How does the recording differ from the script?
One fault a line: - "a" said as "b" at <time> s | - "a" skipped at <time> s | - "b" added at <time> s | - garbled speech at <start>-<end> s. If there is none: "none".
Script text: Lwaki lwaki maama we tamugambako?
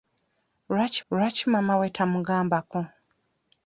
none